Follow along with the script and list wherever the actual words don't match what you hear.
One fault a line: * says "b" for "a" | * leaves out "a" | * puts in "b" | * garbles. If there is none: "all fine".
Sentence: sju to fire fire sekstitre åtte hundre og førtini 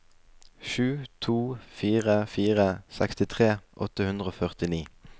all fine